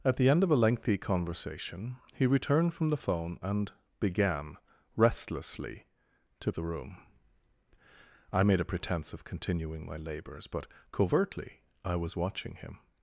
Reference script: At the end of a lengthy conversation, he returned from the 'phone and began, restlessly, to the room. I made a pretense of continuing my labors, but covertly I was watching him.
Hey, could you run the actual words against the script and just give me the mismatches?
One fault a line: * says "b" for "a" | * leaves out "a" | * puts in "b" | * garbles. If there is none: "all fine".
all fine